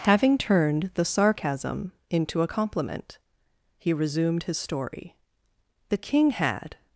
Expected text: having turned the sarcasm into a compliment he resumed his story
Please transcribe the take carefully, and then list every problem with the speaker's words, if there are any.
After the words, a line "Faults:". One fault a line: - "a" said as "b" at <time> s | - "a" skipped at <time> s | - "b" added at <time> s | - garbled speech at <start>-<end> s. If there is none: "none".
having turned the sarcasm into a compliment he resumed his story the king had
Faults:
- "the king had" added at 5.9 s